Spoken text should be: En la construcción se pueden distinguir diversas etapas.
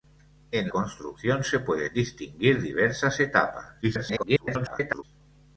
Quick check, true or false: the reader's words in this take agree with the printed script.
false